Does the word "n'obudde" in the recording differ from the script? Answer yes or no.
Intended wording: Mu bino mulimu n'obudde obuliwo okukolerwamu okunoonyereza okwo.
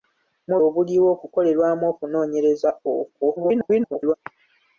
yes